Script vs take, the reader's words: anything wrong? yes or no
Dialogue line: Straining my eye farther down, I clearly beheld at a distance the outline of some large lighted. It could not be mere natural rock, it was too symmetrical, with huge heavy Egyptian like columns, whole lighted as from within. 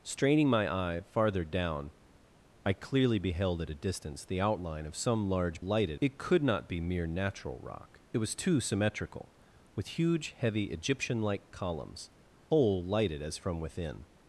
no